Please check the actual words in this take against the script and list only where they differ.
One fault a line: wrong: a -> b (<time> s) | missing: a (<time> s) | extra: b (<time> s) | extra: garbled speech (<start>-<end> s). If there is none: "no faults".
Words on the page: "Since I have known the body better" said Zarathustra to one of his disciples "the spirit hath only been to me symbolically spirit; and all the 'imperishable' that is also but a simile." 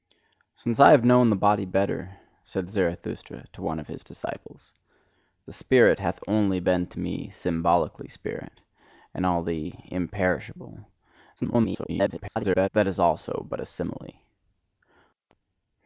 extra: garbled speech (11.4-12.7 s)